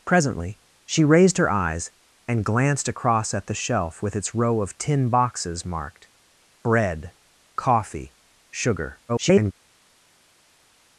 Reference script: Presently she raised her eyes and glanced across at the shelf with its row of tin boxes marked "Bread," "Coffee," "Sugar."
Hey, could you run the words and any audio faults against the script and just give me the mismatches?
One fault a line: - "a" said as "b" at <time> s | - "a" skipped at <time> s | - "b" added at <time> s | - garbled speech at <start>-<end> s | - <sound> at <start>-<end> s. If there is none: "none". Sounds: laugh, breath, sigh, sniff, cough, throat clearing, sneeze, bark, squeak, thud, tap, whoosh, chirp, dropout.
- garbled speech at 9.1-9.5 s